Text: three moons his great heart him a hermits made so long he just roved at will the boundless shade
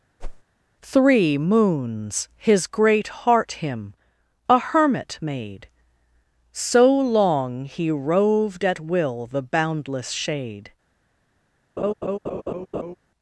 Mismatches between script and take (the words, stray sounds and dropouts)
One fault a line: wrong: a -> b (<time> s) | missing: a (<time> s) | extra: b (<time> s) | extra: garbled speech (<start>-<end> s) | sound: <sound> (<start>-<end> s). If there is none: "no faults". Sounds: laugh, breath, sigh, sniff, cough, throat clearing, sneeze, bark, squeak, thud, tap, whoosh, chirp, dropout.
sound: whoosh (0.2-0.4 s)
wrong: hermits -> hermit (4.6 s)
missing: just (7.9 s)
sound: laugh (11.8-13.0 s)